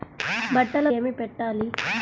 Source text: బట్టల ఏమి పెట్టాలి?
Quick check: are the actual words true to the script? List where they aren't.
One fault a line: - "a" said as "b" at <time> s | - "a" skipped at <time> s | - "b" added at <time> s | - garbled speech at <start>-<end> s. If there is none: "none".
none